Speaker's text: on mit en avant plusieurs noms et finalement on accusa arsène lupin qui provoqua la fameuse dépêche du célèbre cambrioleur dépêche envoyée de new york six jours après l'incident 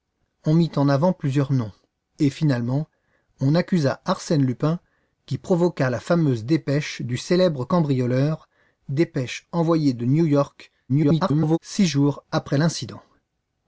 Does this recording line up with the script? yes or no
no